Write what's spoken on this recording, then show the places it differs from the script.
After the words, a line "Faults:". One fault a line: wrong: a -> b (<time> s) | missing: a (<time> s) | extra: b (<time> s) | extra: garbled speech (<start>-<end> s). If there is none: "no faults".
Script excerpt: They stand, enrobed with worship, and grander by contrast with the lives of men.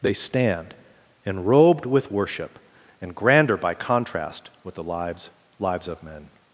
They stand, enrobed with worship, and grander by contrast with the lives lives of men.
Faults:
extra: lives (5.6 s)